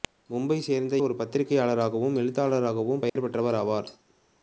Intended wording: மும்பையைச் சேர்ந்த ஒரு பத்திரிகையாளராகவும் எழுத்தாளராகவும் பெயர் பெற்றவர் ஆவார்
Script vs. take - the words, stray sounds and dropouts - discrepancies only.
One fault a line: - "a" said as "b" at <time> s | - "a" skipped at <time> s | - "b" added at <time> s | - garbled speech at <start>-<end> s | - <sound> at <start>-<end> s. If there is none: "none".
- dropout at 3.1-3.2 s